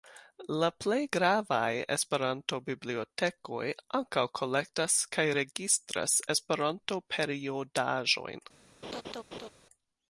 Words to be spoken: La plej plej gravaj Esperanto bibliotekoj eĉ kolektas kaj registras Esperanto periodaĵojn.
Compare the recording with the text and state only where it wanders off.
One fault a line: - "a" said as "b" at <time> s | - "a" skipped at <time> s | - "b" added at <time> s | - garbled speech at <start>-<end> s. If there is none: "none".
- "plej" skipped at 1.0 s
- "eĉ" said as "ankaŭ" at 4.0 s